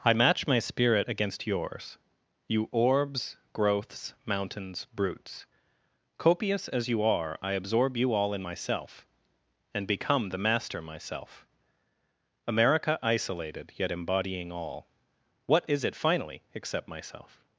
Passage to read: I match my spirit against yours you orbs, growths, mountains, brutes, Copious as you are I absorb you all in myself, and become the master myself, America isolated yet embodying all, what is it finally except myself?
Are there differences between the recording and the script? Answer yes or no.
no